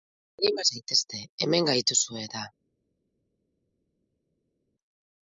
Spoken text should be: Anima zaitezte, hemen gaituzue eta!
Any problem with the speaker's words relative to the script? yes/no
no